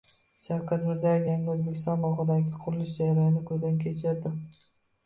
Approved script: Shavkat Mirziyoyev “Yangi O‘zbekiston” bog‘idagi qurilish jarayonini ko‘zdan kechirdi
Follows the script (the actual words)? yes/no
yes